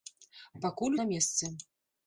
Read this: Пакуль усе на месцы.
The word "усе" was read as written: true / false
false